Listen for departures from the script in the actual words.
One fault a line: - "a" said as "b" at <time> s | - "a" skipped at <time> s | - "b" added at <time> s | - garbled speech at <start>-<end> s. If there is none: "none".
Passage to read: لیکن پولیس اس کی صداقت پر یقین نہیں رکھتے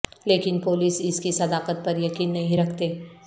none